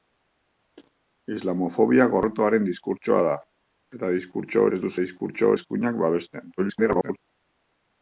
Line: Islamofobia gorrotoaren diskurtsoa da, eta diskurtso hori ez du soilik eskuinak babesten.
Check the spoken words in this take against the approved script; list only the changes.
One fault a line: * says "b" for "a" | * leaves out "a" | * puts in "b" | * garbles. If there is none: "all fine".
* leaves out "hori"
* says "diskurtso" for "soilik"
* garbles